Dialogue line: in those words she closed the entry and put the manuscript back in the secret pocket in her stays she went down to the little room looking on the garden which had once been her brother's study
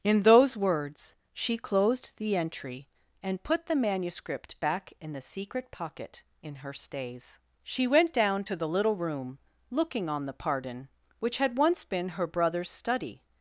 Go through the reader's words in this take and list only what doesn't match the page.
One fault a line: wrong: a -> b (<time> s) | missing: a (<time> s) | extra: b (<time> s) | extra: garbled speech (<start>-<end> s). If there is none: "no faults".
wrong: garden -> pardon (10.4 s)